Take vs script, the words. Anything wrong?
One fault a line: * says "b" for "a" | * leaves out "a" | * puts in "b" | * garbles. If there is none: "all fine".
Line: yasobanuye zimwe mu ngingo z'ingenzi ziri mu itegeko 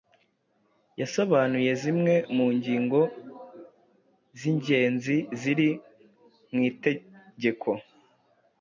all fine